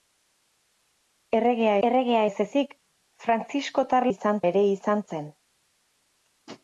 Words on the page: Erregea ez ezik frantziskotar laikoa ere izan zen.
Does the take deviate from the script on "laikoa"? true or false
true